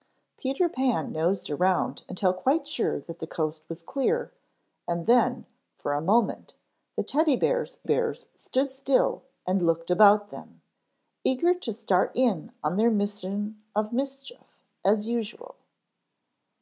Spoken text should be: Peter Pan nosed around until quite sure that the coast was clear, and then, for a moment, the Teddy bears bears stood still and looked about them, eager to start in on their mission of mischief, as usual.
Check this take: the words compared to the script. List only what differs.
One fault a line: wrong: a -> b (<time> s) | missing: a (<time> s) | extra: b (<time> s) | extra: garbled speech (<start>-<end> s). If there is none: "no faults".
no faults